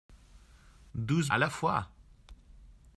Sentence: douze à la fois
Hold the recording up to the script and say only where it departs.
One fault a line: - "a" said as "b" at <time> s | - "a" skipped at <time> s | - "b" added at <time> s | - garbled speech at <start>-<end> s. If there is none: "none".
none